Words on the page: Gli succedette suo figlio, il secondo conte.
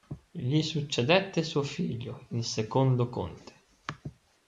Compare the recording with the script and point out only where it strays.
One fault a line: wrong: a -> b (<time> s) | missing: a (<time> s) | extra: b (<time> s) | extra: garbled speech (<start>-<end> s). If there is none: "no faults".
no faults